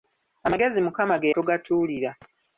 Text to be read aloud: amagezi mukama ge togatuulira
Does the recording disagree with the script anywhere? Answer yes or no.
no